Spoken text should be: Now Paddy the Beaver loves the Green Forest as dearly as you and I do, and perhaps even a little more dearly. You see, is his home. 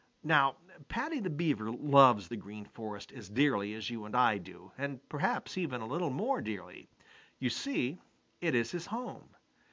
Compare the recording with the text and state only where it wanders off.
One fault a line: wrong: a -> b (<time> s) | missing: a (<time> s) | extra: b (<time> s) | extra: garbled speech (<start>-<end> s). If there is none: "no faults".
extra: it (8.4 s)